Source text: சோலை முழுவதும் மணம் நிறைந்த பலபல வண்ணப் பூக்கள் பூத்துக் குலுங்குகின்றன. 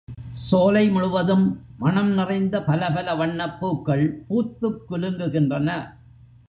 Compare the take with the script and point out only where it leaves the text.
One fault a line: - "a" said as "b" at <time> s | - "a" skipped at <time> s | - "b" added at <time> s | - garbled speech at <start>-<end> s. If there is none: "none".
none